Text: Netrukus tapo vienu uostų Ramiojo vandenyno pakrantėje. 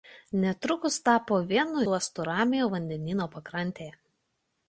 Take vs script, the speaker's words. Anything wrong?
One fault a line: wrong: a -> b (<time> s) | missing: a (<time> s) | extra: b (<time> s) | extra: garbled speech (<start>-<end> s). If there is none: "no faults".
no faults